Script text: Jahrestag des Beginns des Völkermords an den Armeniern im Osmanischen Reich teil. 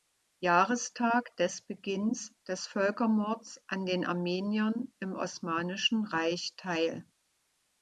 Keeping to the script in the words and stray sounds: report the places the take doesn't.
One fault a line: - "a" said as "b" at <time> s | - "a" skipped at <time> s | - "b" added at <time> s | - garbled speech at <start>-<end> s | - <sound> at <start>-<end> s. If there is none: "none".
none